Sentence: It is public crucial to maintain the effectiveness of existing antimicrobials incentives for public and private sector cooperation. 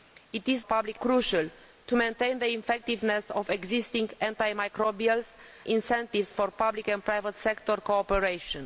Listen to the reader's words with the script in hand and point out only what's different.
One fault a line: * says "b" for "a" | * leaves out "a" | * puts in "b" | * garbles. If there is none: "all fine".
all fine